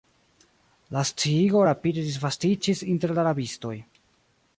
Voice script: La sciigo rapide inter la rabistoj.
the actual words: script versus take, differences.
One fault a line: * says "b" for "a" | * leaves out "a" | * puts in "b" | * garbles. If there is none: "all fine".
* puts in "disvastiĝis"